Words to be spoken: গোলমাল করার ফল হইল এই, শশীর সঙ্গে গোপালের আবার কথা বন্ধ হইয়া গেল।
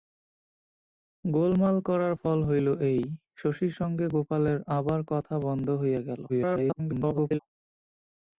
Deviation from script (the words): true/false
true